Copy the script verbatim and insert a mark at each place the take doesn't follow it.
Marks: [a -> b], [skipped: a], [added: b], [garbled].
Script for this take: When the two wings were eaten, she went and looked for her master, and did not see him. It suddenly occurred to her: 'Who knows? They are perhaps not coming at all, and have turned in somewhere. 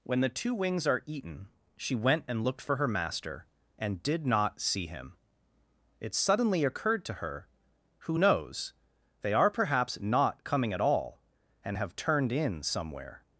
When the two wings [were -> are] eaten, she went and looked for her master, and did not see him. It suddenly occurred to her: 'Who knows? They are perhaps not coming at all, and have turned in somewhere.